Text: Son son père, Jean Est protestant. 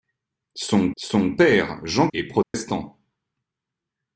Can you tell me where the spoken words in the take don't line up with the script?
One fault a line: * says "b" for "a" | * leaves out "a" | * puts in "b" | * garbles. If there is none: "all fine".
all fine